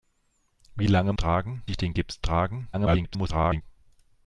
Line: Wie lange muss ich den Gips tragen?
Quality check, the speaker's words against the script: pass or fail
fail